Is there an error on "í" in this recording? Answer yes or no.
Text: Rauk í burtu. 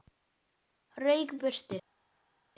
no